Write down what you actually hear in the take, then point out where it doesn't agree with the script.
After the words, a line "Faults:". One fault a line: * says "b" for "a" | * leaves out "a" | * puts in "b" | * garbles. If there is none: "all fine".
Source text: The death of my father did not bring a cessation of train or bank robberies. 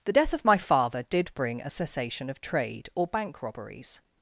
The death of my father did bring a cessation of trade or bank robberies.
Faults:
* leaves out "not"
* says "trade" for "train"